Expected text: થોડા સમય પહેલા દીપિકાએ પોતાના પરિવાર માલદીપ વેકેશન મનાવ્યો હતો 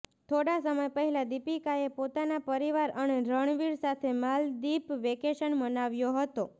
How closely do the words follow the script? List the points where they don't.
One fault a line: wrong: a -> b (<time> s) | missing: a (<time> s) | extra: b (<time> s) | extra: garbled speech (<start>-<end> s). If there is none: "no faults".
extra: અને રણવીર સાથે (3.0 s)